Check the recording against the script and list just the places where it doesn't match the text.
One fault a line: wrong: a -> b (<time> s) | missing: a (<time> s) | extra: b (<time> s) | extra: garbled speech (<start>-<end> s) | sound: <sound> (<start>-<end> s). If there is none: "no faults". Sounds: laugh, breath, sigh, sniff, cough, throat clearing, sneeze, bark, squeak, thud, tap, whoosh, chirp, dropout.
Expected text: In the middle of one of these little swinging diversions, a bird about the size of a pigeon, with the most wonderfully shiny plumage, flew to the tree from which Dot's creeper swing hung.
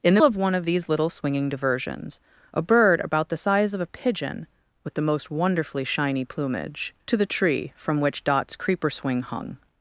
missing: middle (0.2 s)
missing: flew (6.9 s)